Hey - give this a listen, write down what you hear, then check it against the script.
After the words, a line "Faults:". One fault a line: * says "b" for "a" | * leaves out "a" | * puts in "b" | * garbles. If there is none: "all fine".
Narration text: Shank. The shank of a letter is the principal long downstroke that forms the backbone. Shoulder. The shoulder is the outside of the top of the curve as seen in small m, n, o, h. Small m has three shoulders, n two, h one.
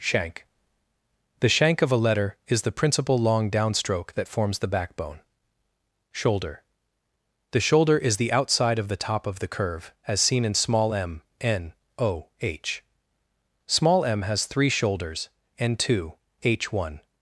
Shank. The shank of a letter is the principal long downstroke that forms the backbone. Shoulder. The shoulder is the outside of the top of the curve as seen in small m, n, o, h. Small m has three shoulders, n two, h one.
Faults:
all fine